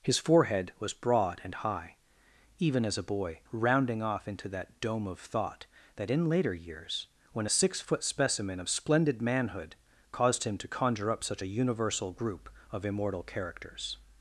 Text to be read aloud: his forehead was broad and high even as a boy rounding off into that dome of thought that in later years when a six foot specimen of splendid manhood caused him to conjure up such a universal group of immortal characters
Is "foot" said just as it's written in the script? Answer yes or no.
yes